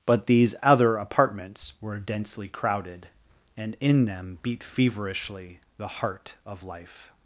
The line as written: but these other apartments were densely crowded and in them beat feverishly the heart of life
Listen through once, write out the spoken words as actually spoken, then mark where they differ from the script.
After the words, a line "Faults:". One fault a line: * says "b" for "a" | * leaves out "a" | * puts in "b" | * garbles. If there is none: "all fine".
but these other apartments were densely crowded and in them beat feverishly the heart of life
Faults:
all fine